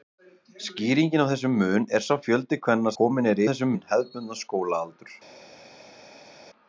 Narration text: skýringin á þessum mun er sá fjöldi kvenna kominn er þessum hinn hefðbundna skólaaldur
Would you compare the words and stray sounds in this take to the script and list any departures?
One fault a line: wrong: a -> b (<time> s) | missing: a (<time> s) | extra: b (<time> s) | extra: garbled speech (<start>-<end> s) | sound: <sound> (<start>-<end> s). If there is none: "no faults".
no faults